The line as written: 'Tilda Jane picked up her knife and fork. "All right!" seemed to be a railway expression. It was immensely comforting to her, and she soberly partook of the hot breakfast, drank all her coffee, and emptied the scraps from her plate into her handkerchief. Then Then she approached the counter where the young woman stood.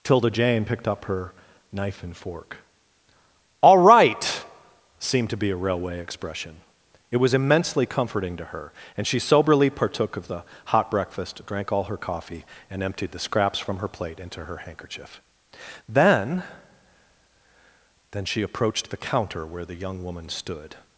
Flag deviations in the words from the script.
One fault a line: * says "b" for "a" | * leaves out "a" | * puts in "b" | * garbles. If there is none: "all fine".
all fine